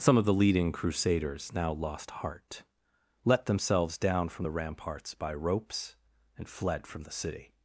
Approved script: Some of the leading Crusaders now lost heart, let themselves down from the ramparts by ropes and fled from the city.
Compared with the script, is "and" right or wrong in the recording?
right